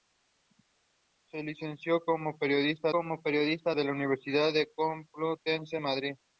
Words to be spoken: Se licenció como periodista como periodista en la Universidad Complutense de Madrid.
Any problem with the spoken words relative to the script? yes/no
no